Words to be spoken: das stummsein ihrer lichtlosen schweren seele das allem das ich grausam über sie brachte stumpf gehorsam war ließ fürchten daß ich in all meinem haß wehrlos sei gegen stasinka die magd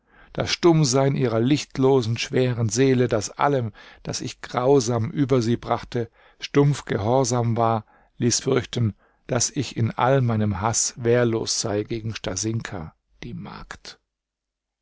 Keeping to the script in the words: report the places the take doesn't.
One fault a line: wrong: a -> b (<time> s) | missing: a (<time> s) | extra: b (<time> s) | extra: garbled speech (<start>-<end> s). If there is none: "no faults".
no faults